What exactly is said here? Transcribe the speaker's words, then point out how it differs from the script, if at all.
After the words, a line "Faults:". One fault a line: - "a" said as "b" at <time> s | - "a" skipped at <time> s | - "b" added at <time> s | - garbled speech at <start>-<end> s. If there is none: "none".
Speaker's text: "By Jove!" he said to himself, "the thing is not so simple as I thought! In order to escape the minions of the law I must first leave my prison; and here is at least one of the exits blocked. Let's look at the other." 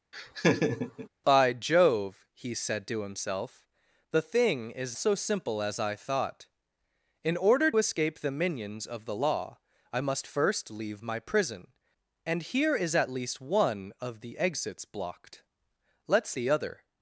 "By Jove!" he said to himself, "the thing is so simple as I thought! In order escape the minions of the law I must first leave my prison; and here is at least one of the exits blocked. Let's the other."
Faults:
- "not" skipped at 4.9 s
- "to" skipped at 7.7 s
- "look at" skipped at 16.4 s